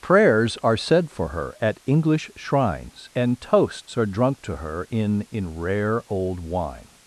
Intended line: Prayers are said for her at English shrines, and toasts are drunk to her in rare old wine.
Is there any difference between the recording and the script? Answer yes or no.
yes